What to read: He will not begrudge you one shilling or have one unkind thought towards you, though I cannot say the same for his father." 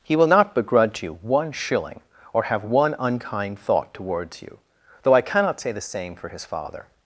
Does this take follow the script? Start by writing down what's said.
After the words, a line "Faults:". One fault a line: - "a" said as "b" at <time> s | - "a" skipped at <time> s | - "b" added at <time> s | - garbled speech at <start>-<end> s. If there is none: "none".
He will not begrudge you one shilling or have one unkind thought towards you, though I cannot say the same for his father."
Faults:
none